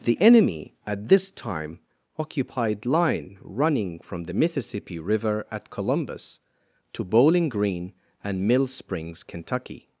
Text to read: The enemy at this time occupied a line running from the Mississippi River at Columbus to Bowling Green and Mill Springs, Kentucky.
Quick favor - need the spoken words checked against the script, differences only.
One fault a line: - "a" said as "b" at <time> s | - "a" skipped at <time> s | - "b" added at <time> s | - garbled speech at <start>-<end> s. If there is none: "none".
- "a" skipped at 2.9 s